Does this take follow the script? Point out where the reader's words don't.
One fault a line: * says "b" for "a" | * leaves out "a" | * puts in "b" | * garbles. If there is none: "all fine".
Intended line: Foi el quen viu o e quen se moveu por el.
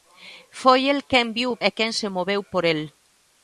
all fine